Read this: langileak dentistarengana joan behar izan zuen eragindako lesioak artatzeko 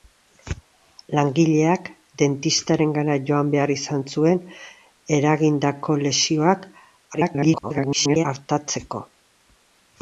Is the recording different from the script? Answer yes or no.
yes